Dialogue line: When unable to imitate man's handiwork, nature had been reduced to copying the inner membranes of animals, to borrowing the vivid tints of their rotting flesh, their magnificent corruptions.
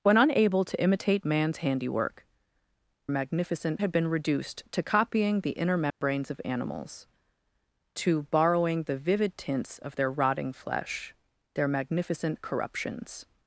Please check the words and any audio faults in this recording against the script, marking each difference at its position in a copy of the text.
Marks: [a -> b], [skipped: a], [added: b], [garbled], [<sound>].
When unable to imitate man's handiwork, [nature -> magnificent] had been reduced to copying the inner membranes [dropout] of animals, to borrowing the vivid tints of their rotting flesh, their magnificent corruptions.